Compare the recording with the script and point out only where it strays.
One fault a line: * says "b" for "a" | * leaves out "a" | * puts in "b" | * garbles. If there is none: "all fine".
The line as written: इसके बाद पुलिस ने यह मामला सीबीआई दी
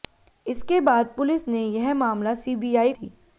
all fine